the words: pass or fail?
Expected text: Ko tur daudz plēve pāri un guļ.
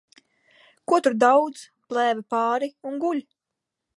pass